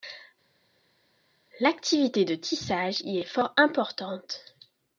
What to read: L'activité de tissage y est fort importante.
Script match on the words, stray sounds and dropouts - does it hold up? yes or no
yes